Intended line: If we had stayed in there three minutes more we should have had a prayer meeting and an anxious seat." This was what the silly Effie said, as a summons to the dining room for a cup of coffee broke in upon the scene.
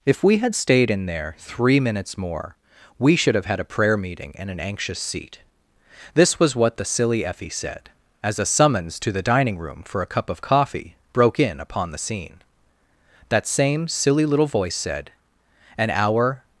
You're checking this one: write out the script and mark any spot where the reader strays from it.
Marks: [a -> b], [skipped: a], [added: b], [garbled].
If we had stayed in there three minutes more we should have had a prayer meeting and an anxious seat." This was what the silly Effie said, as a summons to the dining room for a cup of coffee broke in upon the scene. [added: That same silly little voice said an hour]